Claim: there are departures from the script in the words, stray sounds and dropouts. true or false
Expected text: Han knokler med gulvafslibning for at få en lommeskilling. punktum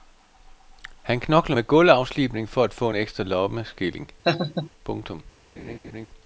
true